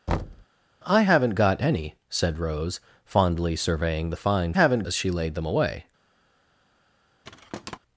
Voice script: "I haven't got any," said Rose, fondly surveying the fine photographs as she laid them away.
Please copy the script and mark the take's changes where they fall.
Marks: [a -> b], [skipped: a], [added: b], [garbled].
"I haven't got any," said Rose, fondly surveying the fine [photographs -> haven't] as she laid them away.